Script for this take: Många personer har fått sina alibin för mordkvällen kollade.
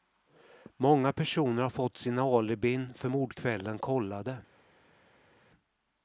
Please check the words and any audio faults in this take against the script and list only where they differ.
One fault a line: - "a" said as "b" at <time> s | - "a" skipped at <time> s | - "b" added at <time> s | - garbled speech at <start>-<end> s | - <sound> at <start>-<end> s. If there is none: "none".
none